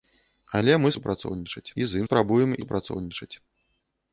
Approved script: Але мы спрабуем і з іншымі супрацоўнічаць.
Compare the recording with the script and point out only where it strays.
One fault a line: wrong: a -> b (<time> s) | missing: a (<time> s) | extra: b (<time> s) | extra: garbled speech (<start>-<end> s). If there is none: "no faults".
wrong: спрабуем -> супрацоўнічаць (1.0 s)
wrong: іншымі -> спрабуем (2.1 s)